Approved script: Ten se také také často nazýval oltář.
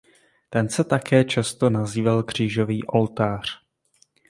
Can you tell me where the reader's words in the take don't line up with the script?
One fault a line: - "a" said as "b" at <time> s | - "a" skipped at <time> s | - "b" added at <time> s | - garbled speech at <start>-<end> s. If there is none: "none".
- "také" skipped at 1.2 s
- "křížový" added at 2.2 s